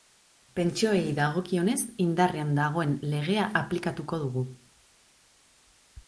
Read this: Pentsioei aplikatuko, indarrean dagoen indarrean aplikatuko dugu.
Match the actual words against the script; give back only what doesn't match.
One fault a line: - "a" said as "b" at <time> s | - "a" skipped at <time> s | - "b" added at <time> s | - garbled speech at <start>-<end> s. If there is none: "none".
- "aplikatuko" said as "dagokionez" at 1.2 s
- "indarrean" said as "legea" at 3.1 s